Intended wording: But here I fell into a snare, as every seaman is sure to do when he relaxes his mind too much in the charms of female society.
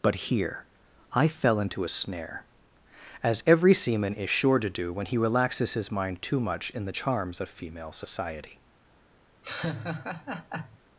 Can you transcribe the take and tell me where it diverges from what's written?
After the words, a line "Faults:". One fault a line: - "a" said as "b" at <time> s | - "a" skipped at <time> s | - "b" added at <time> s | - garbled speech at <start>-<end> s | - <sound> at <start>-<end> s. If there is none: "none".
But here I fell into a snare, as every seaman is sure to do when he relaxes his mind too much in the charms of female society.
Faults:
- laugh at 9.4-10.8 s